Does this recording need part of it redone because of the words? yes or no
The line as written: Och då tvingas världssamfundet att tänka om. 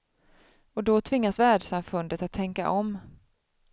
no